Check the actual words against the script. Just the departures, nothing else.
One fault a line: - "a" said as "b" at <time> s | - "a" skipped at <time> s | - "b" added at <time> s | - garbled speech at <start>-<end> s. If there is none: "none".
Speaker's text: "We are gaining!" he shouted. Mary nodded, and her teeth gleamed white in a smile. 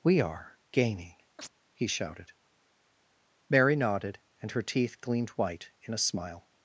none